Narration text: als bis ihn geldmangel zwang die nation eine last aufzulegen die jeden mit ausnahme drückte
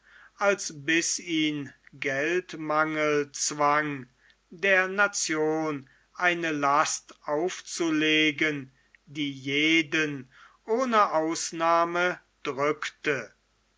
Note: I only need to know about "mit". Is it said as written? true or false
false